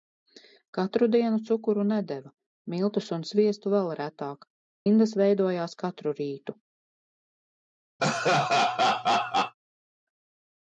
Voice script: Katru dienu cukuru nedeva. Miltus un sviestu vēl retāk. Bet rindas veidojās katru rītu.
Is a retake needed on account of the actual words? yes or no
yes